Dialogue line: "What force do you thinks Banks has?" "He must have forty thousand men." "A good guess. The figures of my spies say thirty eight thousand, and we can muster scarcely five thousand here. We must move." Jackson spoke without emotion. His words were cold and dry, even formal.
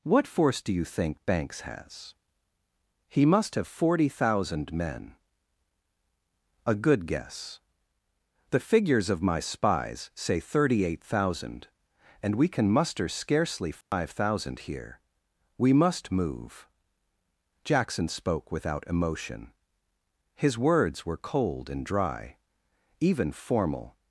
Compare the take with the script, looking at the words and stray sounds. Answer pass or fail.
fail